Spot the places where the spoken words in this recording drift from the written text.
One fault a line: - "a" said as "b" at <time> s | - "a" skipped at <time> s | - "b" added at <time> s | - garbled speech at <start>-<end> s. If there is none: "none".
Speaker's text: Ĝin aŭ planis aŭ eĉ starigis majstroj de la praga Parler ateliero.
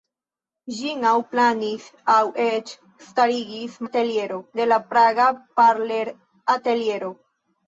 - "majstroj" said as "ateliero" at 3.9 s